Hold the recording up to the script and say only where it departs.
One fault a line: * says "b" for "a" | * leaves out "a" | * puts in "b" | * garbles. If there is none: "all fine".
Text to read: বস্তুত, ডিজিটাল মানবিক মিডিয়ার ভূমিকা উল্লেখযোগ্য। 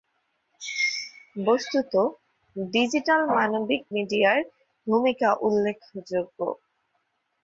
all fine